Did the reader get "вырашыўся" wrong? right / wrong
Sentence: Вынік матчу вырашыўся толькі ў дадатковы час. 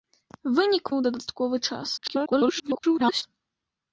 wrong